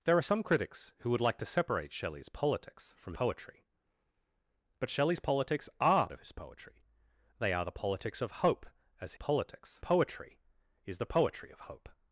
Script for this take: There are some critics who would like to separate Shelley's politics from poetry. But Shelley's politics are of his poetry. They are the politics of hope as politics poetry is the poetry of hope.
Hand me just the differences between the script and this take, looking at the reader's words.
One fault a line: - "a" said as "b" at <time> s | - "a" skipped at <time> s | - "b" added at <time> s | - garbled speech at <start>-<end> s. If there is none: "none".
none